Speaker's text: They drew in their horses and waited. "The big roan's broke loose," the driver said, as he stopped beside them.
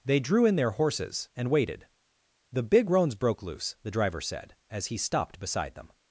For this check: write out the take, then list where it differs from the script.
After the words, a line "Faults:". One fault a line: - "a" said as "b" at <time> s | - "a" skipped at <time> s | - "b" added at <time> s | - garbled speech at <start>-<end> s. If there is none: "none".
They drew in their horses and waited. "The big roan's broke loose," the driver said, as he stopped beside them.
Faults:
none